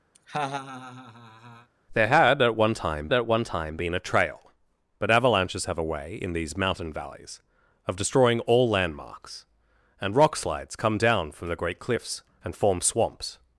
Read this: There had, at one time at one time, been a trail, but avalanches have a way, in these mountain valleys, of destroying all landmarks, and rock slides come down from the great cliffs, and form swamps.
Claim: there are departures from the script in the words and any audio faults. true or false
true